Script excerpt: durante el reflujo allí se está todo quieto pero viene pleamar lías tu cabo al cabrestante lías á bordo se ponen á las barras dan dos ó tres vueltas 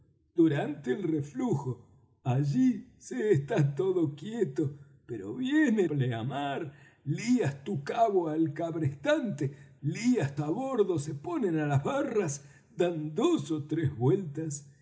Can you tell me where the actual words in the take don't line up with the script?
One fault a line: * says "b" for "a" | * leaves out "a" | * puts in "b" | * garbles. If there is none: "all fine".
all fine